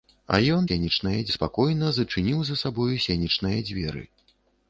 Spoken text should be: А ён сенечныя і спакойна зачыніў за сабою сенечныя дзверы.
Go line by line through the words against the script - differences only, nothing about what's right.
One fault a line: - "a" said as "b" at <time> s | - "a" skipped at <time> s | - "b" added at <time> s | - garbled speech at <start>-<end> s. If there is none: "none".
none